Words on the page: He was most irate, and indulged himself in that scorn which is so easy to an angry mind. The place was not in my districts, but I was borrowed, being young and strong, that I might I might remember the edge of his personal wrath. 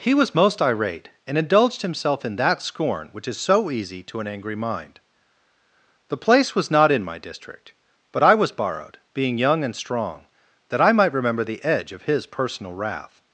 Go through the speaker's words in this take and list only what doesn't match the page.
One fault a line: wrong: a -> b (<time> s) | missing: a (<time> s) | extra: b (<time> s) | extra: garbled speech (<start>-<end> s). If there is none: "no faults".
wrong: districts -> district (7.2 s)
missing: I might (11.1 s)